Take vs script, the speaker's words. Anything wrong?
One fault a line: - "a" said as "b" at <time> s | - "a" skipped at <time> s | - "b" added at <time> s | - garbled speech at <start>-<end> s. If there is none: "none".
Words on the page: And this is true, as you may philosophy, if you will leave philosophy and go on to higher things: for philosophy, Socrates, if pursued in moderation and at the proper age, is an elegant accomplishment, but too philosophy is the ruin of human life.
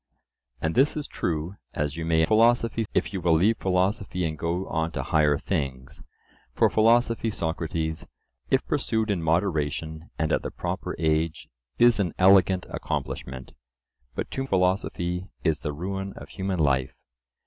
none